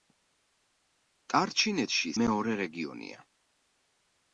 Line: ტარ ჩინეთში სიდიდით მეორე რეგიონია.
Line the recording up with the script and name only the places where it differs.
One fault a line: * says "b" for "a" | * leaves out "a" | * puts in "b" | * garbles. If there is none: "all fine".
* leaves out "სიდიდით"